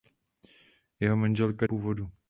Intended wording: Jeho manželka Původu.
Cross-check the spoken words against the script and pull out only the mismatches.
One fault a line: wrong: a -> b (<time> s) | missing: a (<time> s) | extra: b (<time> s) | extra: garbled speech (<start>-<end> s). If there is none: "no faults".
no faults